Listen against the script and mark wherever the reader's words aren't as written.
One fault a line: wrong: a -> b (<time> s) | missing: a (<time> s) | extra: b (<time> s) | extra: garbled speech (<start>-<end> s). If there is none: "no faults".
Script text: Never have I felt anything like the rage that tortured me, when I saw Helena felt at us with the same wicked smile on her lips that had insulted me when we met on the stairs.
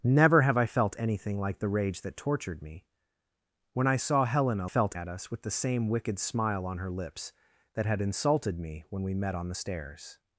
no faults